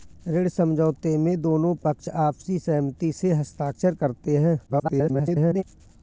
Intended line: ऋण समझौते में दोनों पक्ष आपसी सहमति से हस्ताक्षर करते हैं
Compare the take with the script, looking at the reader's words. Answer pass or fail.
fail